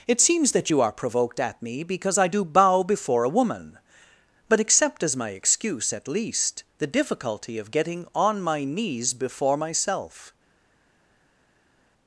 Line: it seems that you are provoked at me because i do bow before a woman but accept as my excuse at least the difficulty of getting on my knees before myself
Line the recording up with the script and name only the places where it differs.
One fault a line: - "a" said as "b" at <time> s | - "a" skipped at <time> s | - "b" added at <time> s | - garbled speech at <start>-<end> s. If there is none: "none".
none